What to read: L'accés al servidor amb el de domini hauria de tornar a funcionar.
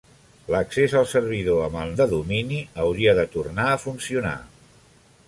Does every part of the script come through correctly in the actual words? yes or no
yes